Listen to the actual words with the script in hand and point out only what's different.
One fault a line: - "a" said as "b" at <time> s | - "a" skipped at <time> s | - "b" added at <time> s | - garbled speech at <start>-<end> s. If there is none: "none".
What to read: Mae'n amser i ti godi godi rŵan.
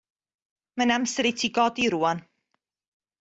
- "godi" skipped at 1.9 s